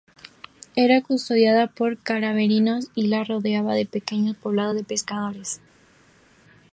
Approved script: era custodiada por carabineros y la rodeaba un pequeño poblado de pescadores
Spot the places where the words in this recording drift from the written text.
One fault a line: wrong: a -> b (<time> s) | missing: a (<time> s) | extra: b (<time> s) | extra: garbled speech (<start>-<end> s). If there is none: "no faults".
no faults